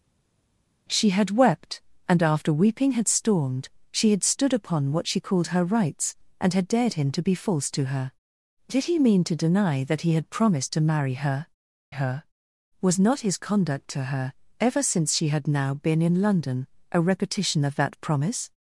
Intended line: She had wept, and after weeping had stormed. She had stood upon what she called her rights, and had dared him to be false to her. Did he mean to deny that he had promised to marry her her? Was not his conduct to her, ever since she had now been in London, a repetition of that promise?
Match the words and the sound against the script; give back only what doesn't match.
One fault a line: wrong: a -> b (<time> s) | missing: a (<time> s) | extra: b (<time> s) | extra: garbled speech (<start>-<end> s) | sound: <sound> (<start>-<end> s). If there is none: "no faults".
no faults